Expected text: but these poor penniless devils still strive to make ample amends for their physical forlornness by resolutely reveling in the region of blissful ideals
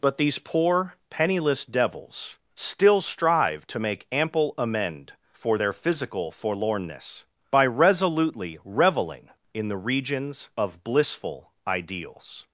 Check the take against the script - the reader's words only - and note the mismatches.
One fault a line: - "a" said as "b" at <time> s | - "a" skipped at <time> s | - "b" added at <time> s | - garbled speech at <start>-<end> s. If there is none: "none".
- "amends" said as "amend" at 4.6 s
- "region" said as "regions" at 9.8 s